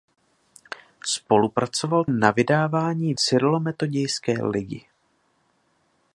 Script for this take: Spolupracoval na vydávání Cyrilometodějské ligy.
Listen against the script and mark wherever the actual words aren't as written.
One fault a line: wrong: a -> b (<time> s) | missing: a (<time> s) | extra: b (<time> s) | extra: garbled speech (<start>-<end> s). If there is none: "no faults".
no faults